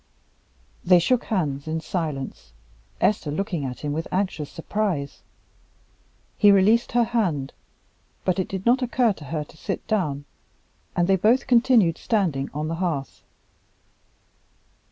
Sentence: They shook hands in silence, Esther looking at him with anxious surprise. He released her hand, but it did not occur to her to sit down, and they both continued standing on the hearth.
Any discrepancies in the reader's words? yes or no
no